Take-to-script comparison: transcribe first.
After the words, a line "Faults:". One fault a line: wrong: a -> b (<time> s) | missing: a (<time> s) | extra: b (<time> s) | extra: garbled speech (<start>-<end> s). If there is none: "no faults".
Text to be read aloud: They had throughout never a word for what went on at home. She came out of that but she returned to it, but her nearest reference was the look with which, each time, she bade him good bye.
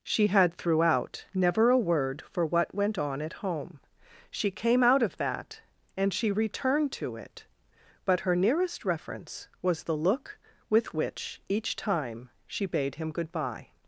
She had throughout never a word for what went on at home. She came out of that and she returned to it, but her nearest reference was the look with which, each time, she bade him good bye.
Faults:
wrong: They -> She (0.0 s)
wrong: but -> and (6.0 s)